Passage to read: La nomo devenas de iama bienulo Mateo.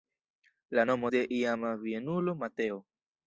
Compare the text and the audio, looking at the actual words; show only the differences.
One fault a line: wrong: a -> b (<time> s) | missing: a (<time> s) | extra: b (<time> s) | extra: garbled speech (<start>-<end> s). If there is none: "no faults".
missing: devenas (1.1 s)